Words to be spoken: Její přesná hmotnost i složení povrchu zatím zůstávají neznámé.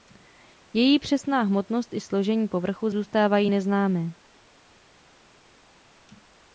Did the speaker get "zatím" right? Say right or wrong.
wrong